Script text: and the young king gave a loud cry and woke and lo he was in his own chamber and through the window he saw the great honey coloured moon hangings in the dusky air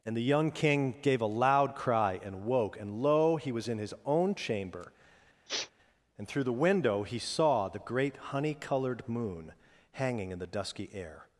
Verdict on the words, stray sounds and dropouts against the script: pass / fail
fail